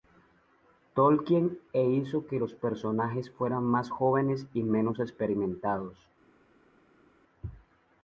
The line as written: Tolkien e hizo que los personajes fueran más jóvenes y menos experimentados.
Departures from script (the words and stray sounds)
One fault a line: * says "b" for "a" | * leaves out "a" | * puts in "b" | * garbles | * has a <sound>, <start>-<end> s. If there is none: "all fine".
all fine